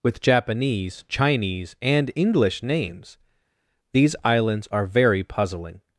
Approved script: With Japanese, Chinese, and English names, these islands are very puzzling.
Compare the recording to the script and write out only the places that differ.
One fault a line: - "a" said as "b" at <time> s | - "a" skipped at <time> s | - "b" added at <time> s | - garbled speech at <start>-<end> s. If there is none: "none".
none